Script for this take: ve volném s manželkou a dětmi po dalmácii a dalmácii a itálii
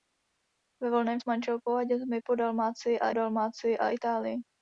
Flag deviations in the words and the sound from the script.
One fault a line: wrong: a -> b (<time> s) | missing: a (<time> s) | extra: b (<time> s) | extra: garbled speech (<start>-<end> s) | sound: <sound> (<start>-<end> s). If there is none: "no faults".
no faults